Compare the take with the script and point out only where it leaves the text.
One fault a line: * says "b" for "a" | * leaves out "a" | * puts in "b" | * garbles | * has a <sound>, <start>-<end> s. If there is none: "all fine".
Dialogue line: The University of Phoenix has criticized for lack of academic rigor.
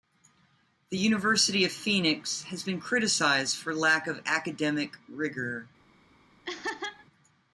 * puts in "been"
* has a laugh, 6.4-7.1 s